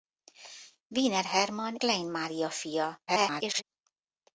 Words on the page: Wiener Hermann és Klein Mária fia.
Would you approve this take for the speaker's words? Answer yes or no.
no